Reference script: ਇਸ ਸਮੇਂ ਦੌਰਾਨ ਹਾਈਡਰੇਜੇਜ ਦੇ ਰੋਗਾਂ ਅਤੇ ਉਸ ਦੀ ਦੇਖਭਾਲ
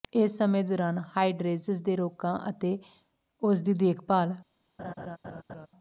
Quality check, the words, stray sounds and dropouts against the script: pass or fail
fail